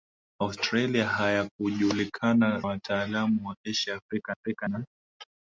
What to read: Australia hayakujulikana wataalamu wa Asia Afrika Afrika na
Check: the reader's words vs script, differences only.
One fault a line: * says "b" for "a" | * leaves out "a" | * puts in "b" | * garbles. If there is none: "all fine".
all fine